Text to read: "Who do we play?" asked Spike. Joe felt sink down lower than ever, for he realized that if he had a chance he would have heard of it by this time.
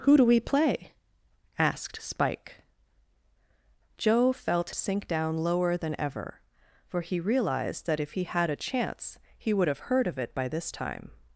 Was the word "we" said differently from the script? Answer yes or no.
no